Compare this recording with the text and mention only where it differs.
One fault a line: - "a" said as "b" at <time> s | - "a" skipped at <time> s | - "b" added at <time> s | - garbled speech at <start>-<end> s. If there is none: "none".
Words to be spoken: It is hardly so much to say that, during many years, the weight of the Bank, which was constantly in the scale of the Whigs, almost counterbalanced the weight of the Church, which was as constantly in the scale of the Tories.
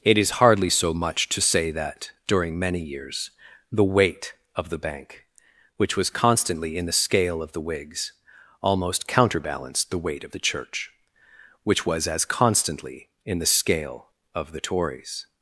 none